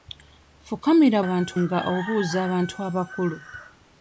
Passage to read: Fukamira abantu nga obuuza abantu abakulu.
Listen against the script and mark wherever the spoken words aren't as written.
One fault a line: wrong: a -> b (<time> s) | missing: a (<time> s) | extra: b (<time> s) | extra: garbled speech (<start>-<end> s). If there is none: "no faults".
no faults